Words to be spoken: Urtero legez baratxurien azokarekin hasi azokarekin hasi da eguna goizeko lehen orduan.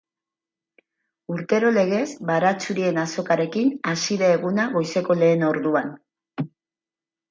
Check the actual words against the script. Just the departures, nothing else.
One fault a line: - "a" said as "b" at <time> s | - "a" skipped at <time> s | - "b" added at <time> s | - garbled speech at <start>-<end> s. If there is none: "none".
- "azokarekin hasi" skipped at 4.2 s